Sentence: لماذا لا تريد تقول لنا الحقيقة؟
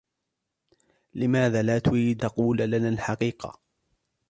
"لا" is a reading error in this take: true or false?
false